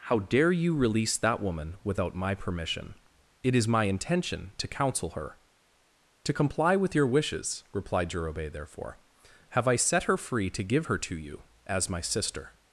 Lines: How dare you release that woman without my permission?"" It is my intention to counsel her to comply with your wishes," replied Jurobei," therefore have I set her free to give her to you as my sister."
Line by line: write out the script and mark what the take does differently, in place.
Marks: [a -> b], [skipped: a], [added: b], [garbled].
How dare you release that woman without my permission?"" It is my intention to counsel her to comply with your wishes," replied Jurobei," therefore have I set her free to give her to you as my sister."